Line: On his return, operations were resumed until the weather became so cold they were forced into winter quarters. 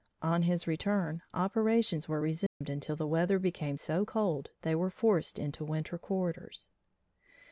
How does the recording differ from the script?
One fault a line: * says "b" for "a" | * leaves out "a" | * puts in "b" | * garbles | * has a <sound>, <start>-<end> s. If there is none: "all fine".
* has a dropout, 2.5-2.6 s